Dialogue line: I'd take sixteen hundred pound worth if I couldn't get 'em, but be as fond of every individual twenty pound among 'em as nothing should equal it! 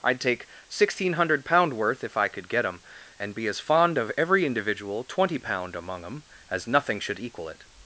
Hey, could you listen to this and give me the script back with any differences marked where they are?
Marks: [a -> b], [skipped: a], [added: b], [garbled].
I'd take sixteen hundred pound worth if I [couldn't -> could] get 'em, [but -> and] be as fond of every individual twenty pound among 'em as nothing should equal it!